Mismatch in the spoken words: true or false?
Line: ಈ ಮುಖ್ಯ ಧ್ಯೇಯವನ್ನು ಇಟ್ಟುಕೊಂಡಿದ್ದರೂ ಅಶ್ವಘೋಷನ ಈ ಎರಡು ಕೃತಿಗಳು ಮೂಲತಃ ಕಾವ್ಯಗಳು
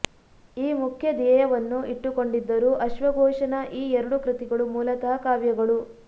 false